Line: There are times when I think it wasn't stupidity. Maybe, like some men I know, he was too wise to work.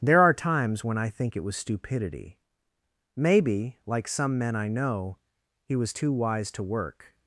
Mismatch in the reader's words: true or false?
true